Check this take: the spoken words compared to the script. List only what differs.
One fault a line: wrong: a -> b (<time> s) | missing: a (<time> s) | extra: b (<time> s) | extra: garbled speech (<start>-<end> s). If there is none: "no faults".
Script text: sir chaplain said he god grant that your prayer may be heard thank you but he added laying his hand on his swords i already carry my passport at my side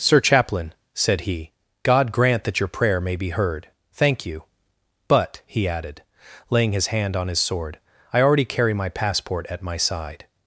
wrong: swords -> sword (7.4 s)